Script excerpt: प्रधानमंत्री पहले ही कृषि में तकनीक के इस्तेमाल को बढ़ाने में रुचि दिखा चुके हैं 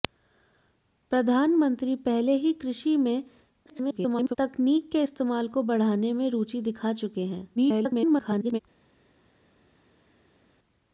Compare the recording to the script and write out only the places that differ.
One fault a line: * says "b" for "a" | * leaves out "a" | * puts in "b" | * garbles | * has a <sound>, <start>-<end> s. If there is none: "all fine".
* garbles
* garbles